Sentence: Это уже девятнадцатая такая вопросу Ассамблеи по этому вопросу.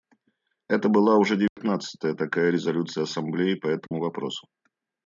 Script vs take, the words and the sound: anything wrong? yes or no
yes